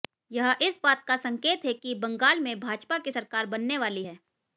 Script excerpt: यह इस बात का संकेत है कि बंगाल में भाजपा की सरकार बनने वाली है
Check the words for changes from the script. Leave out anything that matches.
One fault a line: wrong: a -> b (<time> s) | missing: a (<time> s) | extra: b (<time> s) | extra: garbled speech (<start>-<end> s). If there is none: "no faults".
no faults